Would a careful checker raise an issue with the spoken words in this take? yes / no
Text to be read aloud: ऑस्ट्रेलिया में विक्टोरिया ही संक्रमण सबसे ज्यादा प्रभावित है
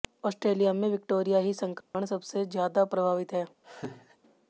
no